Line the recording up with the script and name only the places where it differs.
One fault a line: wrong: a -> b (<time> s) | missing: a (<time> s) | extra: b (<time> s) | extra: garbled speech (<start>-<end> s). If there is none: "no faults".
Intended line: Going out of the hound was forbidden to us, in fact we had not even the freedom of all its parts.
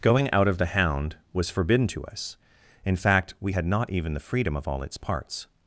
no faults